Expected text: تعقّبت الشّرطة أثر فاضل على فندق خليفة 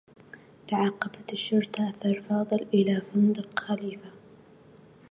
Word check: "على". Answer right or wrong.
wrong